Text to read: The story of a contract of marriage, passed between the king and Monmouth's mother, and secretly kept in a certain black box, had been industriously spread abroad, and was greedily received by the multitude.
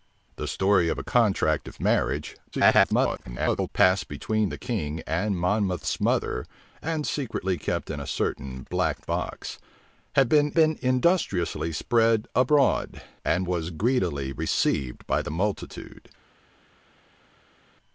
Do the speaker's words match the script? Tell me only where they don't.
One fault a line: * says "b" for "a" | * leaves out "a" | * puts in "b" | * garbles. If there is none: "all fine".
* garbles
* puts in "been"